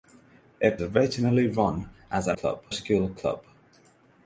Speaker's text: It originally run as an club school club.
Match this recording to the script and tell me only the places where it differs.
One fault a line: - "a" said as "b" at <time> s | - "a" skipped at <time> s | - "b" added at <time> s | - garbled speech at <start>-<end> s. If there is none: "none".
none